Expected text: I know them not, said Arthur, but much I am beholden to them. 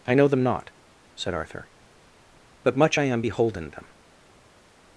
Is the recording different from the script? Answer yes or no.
yes